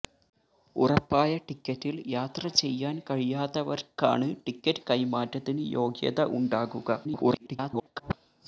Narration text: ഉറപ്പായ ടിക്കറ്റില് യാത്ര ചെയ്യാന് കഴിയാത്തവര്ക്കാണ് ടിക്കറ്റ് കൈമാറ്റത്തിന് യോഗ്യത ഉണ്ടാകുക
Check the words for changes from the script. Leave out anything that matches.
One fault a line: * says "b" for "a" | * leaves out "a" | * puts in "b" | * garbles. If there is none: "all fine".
* garbles